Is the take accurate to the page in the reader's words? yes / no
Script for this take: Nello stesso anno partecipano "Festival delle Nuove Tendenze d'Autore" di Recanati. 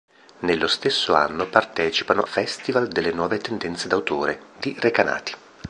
yes